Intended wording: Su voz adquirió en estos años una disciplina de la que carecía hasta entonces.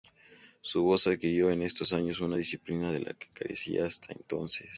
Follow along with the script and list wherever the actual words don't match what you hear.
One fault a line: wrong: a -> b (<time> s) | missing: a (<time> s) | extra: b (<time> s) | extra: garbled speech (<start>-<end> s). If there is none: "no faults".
no faults